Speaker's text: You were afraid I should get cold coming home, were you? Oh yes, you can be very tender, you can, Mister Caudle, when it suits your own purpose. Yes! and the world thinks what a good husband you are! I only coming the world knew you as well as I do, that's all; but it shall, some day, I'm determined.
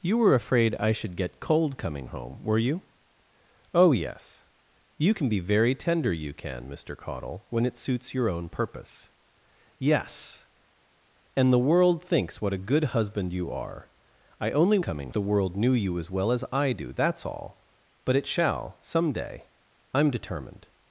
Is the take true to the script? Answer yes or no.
yes